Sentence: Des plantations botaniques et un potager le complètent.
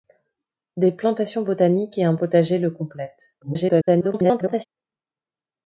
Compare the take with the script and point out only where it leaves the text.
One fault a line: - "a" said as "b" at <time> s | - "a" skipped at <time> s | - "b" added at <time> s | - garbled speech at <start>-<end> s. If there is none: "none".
- garbled speech at 3.4-4.7 s